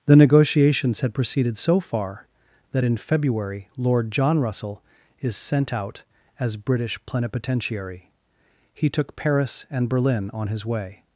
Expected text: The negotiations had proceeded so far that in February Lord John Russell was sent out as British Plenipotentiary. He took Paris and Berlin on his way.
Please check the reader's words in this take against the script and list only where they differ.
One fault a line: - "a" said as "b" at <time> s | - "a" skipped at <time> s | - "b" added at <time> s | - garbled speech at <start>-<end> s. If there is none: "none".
- "was" said as "is" at 5.2 s